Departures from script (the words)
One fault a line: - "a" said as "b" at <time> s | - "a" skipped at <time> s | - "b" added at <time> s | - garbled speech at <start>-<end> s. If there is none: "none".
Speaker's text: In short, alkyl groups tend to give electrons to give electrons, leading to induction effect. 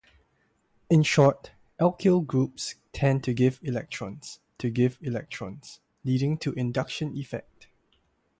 none